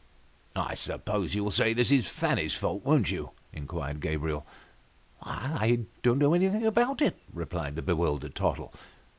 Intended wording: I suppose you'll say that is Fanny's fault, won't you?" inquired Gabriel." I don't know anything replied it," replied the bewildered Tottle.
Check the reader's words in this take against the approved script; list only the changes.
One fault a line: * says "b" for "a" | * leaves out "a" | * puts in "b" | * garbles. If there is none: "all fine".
* says "this" for "that"
* says "about" for "replied"